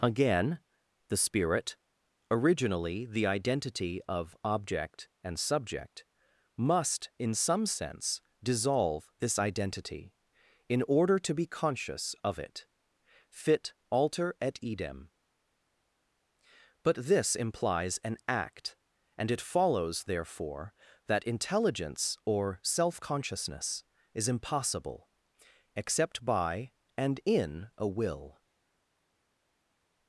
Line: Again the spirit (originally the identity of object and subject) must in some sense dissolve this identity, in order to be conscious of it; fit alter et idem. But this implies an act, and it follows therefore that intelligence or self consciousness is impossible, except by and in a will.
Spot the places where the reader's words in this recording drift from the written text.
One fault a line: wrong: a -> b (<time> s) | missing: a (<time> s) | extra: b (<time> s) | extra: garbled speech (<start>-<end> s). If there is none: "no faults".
no faults